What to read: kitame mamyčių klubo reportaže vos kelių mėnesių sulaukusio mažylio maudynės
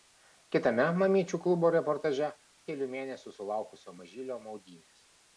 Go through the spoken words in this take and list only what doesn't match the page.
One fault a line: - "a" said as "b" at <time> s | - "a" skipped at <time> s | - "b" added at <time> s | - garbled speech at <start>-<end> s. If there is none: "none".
- "vos" skipped at 2.3 s